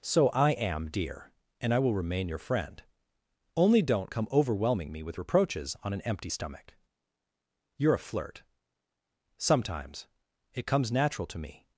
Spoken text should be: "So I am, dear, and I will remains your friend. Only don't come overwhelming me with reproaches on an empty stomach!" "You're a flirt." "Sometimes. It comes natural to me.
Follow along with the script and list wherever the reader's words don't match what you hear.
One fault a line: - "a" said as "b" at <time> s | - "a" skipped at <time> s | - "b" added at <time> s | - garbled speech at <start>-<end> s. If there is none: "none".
- "remains" said as "remain" at 1.9 s